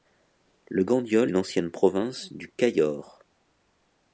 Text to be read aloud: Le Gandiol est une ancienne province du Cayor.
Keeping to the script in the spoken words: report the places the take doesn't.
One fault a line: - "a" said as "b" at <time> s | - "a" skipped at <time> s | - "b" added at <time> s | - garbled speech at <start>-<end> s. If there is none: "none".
- "est" skipped at 1.3 s